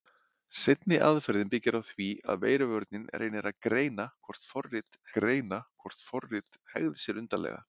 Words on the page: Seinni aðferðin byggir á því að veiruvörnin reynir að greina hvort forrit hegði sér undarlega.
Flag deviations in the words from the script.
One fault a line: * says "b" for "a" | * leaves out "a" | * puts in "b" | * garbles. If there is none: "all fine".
* puts in "greina hvort forrit"